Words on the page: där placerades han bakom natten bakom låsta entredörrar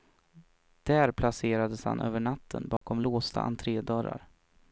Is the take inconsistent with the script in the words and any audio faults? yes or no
yes